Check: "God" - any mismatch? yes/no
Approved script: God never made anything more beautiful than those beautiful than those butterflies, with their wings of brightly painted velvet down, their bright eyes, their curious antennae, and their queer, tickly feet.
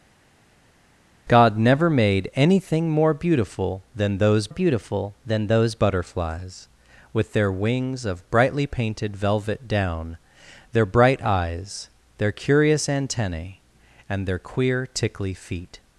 no